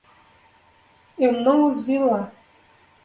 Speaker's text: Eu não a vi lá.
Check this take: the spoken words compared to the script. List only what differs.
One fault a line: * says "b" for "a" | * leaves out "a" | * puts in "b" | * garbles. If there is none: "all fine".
* says "os" for "a"